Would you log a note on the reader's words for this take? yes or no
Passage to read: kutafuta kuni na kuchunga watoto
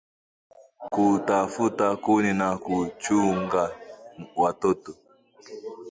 no